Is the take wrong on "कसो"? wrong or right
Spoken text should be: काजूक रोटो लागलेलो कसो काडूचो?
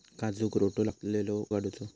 wrong